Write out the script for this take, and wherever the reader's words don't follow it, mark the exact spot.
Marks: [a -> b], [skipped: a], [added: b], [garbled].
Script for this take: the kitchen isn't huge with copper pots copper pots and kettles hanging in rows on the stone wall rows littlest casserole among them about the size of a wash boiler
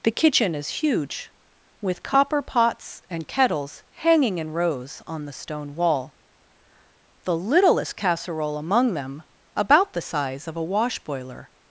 the kitchen [isn't -> is] huge with copper pots [skipped: copper pots] and kettles hanging in rows on the stone wall [rows -> the] littlest casserole among them about the size of a wash boiler